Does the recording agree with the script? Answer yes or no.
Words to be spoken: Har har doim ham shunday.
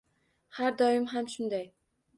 no